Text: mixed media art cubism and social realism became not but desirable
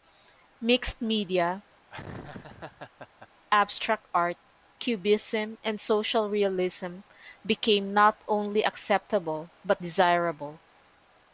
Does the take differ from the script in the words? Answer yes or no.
yes